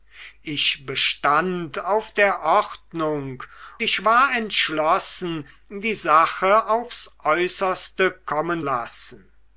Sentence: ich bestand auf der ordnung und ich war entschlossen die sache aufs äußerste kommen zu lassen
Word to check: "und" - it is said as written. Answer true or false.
false